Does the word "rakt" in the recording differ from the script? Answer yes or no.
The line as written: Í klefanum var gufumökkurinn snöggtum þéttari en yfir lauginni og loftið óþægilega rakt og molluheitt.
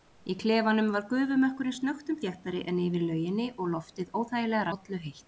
yes